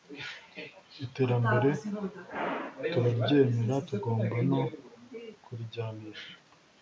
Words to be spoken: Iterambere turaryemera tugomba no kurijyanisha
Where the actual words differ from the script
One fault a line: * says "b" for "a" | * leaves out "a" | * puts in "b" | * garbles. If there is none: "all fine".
all fine